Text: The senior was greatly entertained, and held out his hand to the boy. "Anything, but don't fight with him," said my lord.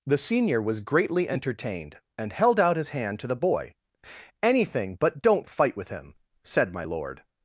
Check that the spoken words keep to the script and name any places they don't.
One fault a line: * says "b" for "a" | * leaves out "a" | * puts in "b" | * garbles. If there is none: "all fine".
all fine